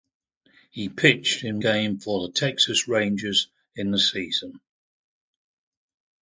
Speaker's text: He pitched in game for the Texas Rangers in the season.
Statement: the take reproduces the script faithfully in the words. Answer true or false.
true